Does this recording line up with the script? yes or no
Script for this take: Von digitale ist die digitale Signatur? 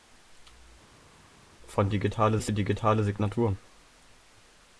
yes